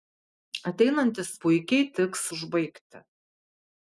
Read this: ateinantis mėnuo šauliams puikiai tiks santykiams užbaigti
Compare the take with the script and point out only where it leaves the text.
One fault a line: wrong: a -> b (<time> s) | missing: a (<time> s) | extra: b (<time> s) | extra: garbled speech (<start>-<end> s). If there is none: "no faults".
missing: mėnuo šauliams (1.3 s)
missing: santykiams (2.2 s)